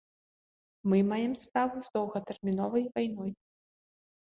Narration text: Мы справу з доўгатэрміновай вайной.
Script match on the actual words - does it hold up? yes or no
no